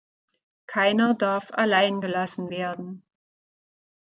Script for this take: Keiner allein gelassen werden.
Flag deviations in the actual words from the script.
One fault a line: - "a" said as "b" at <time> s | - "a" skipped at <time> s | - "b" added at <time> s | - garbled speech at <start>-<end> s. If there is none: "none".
- "darf" added at 1.1 s